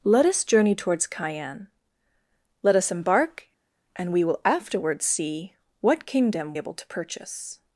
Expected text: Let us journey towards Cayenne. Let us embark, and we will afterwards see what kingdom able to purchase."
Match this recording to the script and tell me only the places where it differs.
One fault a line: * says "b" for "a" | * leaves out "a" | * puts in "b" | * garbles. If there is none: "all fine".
all fine